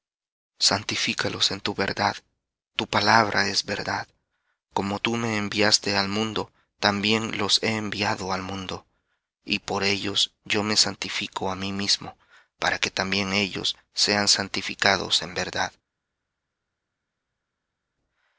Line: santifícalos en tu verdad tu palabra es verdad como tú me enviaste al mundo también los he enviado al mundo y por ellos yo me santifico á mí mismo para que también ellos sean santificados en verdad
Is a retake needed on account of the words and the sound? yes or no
no